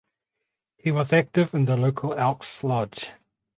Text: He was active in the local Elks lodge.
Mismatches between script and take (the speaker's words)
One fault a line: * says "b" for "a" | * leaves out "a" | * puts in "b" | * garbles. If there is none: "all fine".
all fine